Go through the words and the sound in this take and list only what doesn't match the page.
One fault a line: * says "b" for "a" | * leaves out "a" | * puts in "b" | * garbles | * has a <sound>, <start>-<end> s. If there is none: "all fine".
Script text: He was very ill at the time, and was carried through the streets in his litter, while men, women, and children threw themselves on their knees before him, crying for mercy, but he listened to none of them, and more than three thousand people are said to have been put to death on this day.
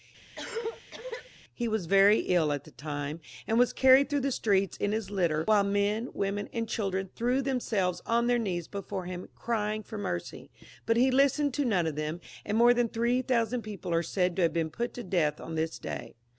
* has a cough, 0.4-1.3 s